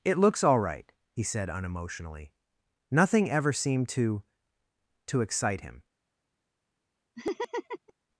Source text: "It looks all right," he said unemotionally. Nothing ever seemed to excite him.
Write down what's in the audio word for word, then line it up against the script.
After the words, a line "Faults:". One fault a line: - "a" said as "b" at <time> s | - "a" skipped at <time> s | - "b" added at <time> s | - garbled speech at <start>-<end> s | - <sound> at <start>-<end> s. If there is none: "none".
"It looks all right," he said unemotionally. Nothing ever seemed to to excite him.
Faults:
- "to" added at 5.0 s
- laugh at 7.2-7.9 s